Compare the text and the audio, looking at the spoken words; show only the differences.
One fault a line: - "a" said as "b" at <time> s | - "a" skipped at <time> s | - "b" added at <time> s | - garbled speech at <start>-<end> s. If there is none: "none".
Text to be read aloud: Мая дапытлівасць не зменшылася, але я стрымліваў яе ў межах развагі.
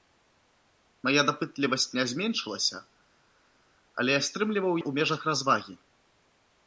- "яе" skipped at 4.7 s